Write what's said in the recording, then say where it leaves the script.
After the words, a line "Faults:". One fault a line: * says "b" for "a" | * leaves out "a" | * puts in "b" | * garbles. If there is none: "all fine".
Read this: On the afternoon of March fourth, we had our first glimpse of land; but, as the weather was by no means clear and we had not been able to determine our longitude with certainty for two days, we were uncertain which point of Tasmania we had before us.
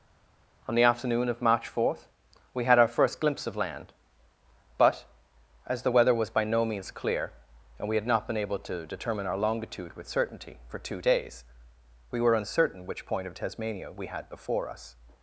On the afternoon of March fourth, we had our first glimpse of land; but, as the weather was by no means clear and we had not been able to determine our longitude with certainty for two days, we were uncertain which point of Tasmania we had before us.
Faults:
all fine